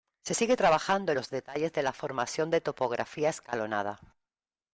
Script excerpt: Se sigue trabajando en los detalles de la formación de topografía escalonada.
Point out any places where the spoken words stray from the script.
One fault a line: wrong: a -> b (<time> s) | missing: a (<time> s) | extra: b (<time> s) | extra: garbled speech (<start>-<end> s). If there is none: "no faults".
no faults